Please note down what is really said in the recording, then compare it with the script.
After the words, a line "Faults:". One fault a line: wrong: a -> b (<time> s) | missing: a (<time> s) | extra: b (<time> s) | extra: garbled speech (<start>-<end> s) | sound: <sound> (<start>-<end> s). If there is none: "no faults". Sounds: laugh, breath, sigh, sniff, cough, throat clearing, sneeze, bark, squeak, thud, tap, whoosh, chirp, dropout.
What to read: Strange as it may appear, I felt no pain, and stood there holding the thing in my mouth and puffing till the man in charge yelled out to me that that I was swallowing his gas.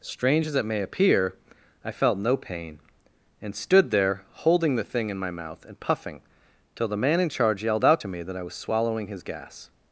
Strange as it may appear, I felt no pain, and stood there holding the thing in my mouth and puffing till the man in charge yelled out to me that I was swallowing his gas.
Faults:
missing: that (8.4 s)